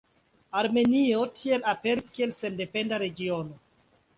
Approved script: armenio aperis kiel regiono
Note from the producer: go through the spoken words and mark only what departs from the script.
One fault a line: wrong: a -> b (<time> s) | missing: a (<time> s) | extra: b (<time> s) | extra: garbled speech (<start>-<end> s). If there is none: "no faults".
extra: tiel (1.4 s)
extra: sendependa (2.4 s)